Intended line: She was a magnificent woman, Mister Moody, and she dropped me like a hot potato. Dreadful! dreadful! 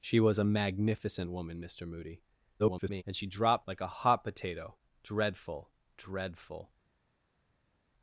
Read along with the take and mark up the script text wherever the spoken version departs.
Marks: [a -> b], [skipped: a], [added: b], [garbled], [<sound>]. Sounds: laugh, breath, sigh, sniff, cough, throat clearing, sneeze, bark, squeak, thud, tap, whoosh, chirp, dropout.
She was a magnificent woman, Mister Moody, [garbled] and she dropped [skipped: me] like a hot potato. Dreadful! dreadful!